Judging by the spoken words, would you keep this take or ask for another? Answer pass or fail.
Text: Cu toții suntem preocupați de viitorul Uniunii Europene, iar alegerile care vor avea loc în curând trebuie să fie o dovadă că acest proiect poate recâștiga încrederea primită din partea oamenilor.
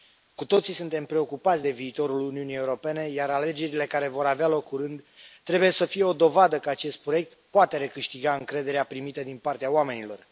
fail